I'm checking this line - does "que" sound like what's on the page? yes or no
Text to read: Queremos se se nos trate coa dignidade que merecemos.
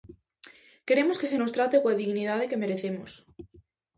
yes